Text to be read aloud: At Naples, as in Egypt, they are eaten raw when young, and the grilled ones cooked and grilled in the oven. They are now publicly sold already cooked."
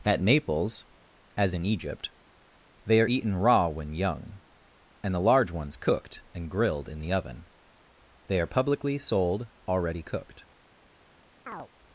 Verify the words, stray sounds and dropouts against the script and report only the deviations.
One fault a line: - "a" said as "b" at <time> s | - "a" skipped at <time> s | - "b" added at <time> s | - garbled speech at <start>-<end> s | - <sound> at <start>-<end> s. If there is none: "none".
- "grilled" said as "large" at 5.2 s
- "now" skipped at 8.5 s
- chirp at 11.5-11.7 s